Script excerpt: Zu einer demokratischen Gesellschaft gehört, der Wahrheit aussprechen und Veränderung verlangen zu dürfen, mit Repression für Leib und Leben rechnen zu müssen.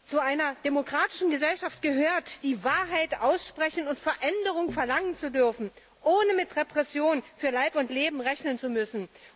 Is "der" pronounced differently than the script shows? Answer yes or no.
yes